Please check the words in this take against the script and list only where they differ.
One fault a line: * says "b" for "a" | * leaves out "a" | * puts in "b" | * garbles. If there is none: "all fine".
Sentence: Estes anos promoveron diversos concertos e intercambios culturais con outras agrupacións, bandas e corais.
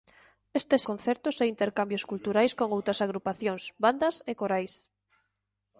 * leaves out "anos promoveron diversos"